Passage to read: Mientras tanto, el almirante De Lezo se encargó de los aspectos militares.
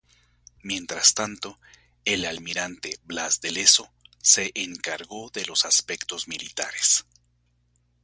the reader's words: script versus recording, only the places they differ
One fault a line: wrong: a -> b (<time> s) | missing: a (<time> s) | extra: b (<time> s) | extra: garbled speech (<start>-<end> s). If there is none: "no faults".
extra: Blas (3.0 s)